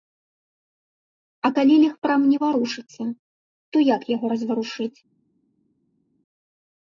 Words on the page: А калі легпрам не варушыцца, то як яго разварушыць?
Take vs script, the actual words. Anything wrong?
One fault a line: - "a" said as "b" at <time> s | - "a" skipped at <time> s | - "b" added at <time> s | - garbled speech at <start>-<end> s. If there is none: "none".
none